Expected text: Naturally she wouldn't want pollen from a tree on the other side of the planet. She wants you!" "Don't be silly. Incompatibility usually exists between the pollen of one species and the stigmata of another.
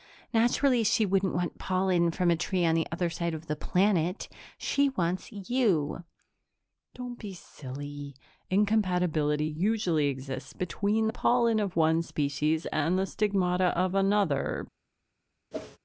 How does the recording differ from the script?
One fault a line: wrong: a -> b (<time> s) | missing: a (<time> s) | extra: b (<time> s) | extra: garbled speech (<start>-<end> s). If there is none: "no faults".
no faults